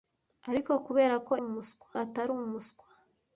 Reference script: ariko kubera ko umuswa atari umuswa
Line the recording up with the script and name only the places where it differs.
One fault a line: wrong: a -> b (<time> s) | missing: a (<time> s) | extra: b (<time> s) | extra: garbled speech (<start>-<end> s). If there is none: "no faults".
no faults